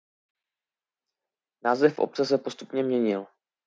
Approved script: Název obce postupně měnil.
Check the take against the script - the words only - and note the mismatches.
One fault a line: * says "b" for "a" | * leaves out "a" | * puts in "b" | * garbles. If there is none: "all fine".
* puts in "se"